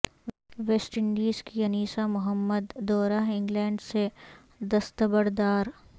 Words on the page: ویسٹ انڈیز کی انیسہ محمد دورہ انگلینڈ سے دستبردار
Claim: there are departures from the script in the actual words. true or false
false